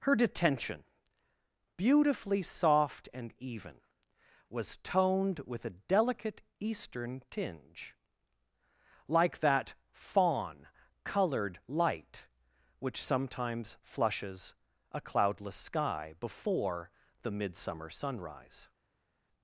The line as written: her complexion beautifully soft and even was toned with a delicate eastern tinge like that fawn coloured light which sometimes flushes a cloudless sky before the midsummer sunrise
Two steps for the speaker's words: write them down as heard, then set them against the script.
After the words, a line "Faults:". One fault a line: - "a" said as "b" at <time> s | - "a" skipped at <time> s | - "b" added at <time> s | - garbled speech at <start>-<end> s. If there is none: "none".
her detention beautifully soft and even was toned with a delicate eastern tinge like that fawn coloured light which sometimes flushes a cloudless sky before the midsummer sunrise
Faults:
- "complexion" said as "detention" at 0.1 s